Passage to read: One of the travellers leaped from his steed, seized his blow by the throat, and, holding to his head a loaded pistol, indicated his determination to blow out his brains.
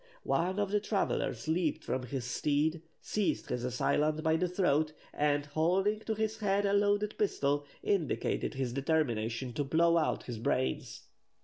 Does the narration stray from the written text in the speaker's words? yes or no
yes